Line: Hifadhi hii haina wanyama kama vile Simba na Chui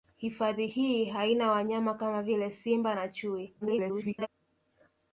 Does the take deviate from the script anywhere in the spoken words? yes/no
yes